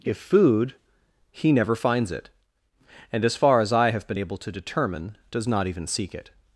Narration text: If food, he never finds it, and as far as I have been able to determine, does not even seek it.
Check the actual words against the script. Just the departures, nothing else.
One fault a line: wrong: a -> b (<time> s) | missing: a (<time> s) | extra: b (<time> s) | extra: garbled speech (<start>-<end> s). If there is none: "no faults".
no faults